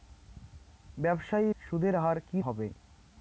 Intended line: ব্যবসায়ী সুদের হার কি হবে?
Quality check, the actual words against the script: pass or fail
pass